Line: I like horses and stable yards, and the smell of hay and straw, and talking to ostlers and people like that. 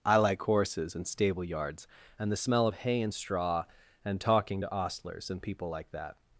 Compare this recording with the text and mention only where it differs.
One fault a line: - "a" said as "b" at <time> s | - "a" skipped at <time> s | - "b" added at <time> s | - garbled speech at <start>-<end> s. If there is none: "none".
none